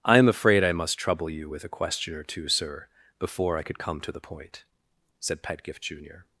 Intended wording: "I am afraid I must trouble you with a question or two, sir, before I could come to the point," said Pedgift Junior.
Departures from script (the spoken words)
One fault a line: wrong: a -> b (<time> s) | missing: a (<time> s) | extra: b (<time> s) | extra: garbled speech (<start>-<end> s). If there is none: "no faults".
no faults